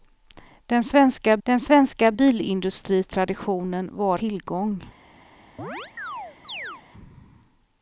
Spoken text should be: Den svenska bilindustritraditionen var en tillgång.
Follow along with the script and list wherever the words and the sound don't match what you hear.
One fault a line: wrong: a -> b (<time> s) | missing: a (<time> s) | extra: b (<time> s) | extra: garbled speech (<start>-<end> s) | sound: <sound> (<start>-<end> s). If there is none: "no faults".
extra: den svenska (1.4 s)
missing: en (4.2 s)
sound: chirp (5.6-6.8 s)